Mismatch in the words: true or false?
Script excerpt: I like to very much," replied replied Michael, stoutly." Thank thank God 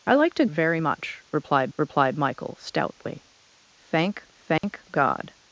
false